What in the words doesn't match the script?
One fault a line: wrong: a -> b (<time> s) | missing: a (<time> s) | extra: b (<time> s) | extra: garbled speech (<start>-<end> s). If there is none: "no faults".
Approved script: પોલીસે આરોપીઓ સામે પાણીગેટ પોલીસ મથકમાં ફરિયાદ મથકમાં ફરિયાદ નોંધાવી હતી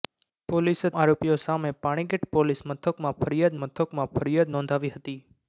no faults